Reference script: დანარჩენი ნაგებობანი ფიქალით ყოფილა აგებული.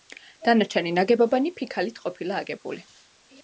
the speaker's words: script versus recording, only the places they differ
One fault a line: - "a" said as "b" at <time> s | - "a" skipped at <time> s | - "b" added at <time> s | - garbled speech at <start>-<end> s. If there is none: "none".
none